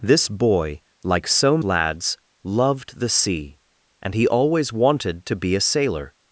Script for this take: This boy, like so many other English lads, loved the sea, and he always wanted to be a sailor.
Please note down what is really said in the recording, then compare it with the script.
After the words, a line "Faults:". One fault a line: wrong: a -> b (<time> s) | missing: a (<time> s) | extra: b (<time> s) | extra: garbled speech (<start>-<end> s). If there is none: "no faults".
This boy, like so lads, loved the sea, and he always wanted to be a sailor.
Faults:
missing: many other English (1.6 s)